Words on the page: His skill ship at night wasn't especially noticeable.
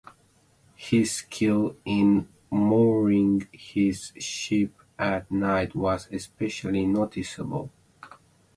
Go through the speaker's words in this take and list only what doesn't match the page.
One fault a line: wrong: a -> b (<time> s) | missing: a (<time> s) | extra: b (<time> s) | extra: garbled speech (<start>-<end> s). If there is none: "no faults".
extra: in mooring his (1.9 s)
wrong: wasn't -> was (5.7 s)